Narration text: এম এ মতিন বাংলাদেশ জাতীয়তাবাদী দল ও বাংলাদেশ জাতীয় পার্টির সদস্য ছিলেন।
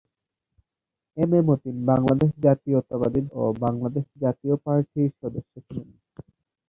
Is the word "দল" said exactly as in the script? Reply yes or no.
no